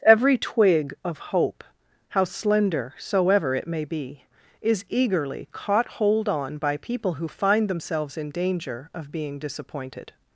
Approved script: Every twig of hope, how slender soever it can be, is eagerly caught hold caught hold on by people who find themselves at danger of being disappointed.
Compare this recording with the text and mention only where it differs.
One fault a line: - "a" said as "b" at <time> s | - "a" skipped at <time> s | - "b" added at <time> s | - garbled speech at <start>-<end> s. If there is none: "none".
- "can" said as "may" at 3.7 s
- "caught hold" skipped at 6.3 s
- "at" said as "in" at 8.2 s